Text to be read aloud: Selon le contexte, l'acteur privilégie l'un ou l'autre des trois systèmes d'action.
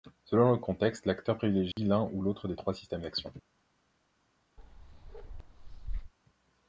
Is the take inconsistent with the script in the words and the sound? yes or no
yes